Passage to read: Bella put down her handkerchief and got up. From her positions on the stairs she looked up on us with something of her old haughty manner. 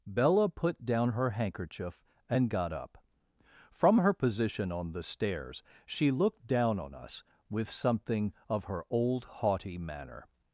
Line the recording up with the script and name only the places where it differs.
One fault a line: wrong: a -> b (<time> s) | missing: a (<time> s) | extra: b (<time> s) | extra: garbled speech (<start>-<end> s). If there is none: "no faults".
wrong: positions -> position (4.1 s)
wrong: up -> down (6.5 s)